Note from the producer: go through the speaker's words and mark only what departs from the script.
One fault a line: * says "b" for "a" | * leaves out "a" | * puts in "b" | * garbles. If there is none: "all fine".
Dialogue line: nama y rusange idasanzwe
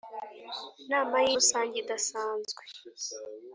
all fine